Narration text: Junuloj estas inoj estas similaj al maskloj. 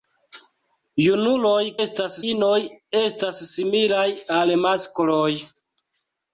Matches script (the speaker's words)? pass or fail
pass